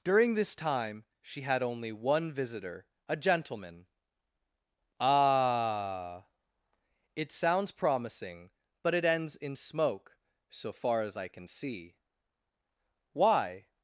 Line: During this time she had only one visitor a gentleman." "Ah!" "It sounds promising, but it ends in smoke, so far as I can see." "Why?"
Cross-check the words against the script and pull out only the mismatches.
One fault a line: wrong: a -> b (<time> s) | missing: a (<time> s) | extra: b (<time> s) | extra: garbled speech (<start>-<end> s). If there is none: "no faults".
no faults